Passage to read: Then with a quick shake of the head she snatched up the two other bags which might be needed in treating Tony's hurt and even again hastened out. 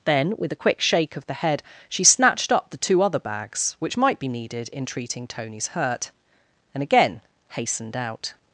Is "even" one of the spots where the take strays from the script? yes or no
yes